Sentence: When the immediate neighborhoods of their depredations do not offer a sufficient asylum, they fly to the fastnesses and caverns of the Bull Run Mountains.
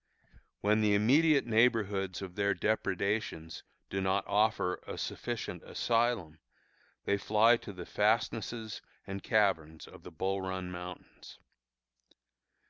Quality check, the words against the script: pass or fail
pass